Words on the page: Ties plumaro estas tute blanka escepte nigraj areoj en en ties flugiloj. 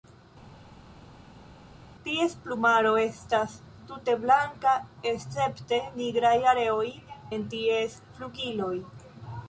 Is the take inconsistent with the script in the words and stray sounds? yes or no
yes